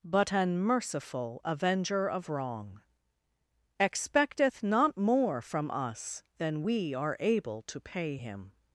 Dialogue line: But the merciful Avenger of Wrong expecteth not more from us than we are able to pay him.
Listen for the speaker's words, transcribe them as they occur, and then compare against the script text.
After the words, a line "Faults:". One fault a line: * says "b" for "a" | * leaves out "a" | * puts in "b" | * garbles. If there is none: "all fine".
But an merciful Avenger of Wrong expecteth not more from us than we are able to pay him.
Faults:
* says "an" for "the"